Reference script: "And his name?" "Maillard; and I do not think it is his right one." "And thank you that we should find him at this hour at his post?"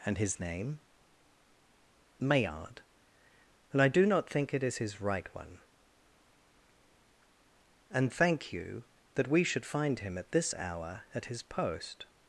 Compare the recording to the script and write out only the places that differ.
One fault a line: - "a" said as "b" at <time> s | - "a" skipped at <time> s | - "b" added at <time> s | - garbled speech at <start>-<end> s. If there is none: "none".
none